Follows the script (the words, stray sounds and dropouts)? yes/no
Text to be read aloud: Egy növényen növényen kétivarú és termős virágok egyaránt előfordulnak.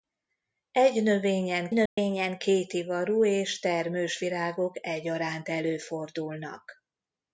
no